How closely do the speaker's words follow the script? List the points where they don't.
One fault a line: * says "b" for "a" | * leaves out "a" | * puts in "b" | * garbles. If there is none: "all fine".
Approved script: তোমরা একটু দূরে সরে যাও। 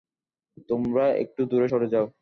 all fine